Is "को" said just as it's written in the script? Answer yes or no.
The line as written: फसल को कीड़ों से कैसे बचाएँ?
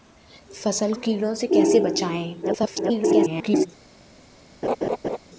no